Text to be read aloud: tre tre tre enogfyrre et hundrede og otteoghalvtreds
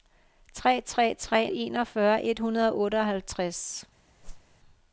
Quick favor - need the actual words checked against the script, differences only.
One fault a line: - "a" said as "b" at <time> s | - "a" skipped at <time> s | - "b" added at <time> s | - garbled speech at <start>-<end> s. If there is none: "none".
none